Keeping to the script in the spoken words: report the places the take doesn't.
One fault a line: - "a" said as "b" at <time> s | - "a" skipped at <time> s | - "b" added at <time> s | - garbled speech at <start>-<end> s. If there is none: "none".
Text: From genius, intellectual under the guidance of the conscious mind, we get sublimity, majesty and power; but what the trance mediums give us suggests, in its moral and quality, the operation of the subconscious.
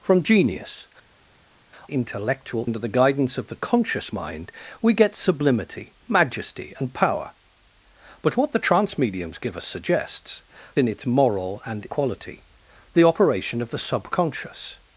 none